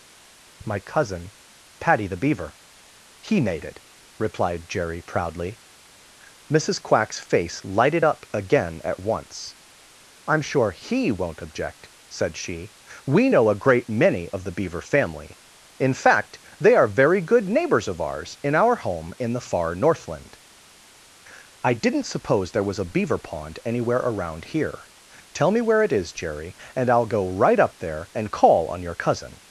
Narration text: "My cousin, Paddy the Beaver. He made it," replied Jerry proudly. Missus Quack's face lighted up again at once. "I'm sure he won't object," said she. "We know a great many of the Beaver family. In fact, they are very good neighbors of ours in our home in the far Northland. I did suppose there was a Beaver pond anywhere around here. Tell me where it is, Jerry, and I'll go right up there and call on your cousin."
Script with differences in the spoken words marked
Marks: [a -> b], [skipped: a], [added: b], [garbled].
"My cousin, Paddy the Beaver. He made it," replied Jerry proudly. Missus Quack's face lighted up again at once. "I'm sure he won't object," said she. "We know a great many of the Beaver family. In fact, they are very good neighbors of ours in our home in the far Northland. I [did -> didn't] suppose there was a Beaver pond anywhere around here. Tell me where it is, Jerry, and I'll go right up there and call on your cousin."